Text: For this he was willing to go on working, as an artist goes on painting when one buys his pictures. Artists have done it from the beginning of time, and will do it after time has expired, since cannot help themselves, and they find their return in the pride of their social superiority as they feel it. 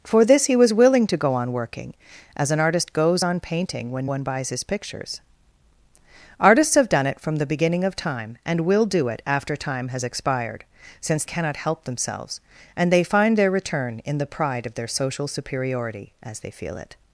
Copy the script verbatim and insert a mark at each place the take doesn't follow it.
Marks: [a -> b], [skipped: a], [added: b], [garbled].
For this he was willing to go on working, as an artist goes on painting when one buys his pictures. Artists have done it from the beginning of time, and will do it after time has expired, since cannot help themselves, and they find their return in the pride of their social superiority as they feel it.